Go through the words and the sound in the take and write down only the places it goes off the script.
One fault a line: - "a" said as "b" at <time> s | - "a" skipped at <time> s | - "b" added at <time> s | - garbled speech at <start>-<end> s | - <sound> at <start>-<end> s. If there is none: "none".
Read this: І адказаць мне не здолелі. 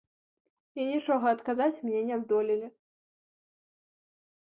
- "нічога" added at 0.9 s